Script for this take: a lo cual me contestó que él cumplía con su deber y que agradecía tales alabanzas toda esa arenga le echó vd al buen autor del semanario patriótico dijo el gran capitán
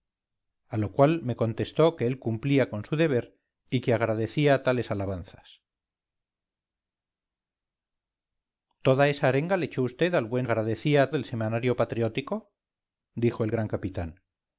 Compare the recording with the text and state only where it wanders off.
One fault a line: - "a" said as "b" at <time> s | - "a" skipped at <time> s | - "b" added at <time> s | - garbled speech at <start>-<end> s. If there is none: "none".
- "autor" said as "agradecía" at 10.4 s